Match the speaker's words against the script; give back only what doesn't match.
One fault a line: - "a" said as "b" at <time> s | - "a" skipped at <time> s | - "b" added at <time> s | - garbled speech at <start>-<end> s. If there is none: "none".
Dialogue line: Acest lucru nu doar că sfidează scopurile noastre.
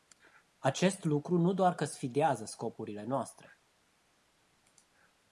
none